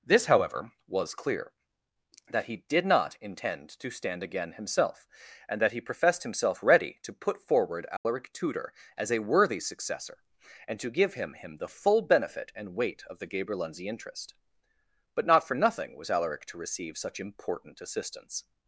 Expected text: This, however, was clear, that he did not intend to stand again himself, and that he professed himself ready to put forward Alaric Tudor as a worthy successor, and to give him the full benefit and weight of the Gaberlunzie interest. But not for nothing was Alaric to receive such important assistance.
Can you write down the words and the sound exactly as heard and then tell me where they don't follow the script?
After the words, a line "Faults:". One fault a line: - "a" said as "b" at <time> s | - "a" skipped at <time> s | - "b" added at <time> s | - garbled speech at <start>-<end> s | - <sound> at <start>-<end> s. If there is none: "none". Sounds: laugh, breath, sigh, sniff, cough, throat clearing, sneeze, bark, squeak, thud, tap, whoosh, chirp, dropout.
This, however, was clear, that he did not intend to stand again himself, and that he professed himself ready to put forward Alaric Tudor as a worthy successor, and to give him him the full benefit and weight of the Gaberlunzie interest. But not for nothing was Alaric to receive such important assistance.
Faults:
- dropout at 8.0-8.1 s
- "him" added at 11.3 s